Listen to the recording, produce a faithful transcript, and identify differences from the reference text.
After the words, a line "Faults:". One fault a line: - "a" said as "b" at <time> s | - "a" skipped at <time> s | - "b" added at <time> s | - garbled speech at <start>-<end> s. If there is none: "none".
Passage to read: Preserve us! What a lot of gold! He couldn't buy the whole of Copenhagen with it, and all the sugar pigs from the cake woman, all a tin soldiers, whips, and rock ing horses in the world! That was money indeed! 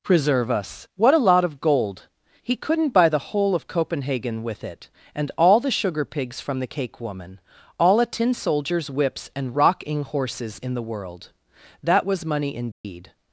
Preserve us! What a lot of gold! He couldn't buy the whole of Copenhagen with it, and all the sugar pigs from the cake woman, all a tin soldiers, whips, and rock ing horses in the world! That was money indeed!
Faults:
none